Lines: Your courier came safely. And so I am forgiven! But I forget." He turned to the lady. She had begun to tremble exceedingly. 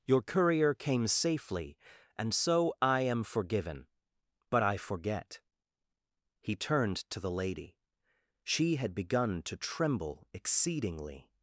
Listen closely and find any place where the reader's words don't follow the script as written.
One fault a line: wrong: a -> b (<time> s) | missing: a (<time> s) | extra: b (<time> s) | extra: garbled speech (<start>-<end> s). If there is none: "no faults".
no faults